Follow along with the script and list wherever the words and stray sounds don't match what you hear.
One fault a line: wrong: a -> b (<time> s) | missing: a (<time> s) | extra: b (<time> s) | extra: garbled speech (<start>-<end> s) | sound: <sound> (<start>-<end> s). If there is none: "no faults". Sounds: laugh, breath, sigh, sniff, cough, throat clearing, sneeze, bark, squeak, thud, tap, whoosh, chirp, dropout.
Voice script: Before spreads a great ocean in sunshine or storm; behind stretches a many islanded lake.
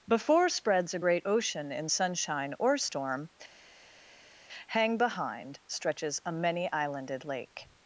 extra: hang (4.7 s)